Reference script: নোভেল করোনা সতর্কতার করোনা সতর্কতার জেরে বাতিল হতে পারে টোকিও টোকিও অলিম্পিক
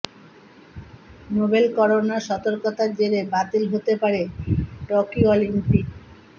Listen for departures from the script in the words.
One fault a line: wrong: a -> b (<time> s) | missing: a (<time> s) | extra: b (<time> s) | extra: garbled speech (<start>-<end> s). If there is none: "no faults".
missing: করোনা সতর্কতার (2.9 s)
missing: টোকিও (5.3 s)